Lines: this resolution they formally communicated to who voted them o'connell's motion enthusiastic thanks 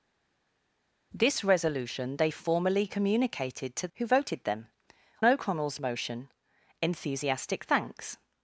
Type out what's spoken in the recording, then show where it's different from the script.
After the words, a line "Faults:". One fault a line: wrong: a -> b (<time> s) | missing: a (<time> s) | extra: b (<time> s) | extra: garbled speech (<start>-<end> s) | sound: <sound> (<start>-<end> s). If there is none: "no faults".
this resolution they formally communicated to who voted them o'connell's motion enthusiastic thanks
Faults:
no faults